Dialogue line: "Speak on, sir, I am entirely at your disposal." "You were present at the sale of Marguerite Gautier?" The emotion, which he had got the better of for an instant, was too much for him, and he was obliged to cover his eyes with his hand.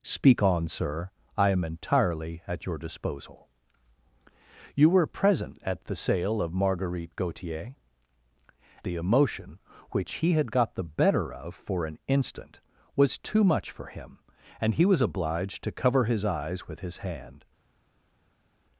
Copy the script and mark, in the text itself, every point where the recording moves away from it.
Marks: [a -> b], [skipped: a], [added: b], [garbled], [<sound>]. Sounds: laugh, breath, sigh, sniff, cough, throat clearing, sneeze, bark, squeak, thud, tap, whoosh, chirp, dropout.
"Speak on, sir, I am entirely at your disposal." "You were present at the sale of Marguerite Gautier?" The emotion, which he had got the better of for an instant, was too much for him, and he was obliged to cover his eyes with his hand.